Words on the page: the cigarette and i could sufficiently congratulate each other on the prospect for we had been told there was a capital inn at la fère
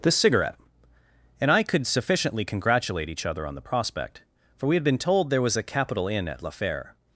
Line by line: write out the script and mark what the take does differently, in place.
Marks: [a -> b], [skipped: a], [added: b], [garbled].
the cigarette and i could sufficiently congratulate each other on the prospect for we had been told there was a capital inn at la fère